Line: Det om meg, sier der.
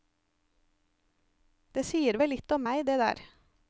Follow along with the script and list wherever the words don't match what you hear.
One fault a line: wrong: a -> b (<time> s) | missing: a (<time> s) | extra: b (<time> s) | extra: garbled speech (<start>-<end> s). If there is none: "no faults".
extra: sier vel litt (1.9 s)
wrong: sier -> det (2.9 s)